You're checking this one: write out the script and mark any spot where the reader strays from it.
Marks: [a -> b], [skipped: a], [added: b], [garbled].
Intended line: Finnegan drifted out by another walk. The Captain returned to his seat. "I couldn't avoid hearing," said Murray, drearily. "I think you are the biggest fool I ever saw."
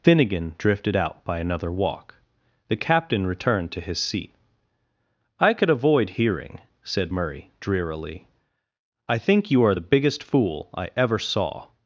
Finnegan drifted out by another walk. The Captain returned to his seat. "I [couldn't -> could] avoid hearing," said Murray, drearily. "I think you are the biggest fool I ever saw."